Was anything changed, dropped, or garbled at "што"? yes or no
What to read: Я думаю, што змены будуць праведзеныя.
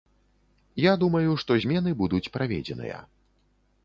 no